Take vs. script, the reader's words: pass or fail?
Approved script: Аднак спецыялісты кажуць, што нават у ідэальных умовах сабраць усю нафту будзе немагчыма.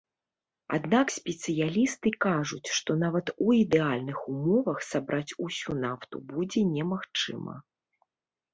pass